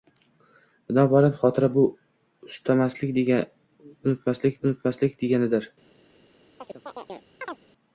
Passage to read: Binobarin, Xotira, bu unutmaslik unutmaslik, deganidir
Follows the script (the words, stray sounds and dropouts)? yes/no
no